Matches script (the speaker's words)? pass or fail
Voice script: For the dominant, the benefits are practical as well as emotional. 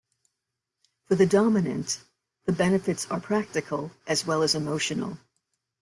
pass